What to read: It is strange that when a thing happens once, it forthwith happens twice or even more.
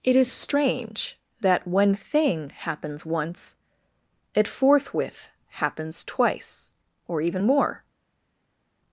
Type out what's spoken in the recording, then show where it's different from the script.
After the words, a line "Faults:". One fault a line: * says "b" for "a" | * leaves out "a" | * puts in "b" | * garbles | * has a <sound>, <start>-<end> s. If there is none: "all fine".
It is strange that when thing happens once, it forthwith happens twice or even more.
Faults:
* leaves out "a"